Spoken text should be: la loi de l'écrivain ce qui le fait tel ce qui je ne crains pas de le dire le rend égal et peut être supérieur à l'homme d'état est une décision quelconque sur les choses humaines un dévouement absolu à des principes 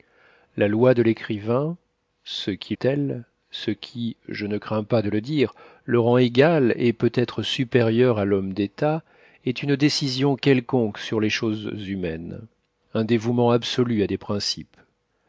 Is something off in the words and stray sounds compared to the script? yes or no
yes